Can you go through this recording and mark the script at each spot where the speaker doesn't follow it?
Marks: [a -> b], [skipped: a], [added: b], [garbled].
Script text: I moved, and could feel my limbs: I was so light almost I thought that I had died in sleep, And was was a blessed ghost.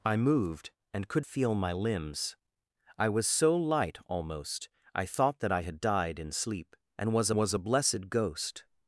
I moved, and could feel my limbs: I was so light almost I thought that I had died in sleep, And was was a blessed ghost.